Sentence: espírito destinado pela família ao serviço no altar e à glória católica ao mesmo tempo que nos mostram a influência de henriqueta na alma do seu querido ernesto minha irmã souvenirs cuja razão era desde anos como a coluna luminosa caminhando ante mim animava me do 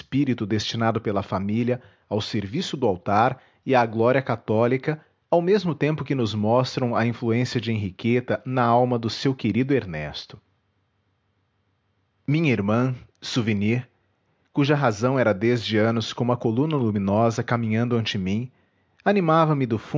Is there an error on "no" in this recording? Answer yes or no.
yes